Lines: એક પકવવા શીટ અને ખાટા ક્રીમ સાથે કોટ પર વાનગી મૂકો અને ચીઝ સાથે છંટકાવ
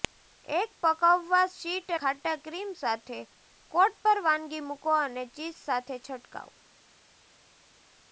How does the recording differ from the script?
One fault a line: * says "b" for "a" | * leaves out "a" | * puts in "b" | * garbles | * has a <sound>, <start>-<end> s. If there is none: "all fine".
* leaves out "અને"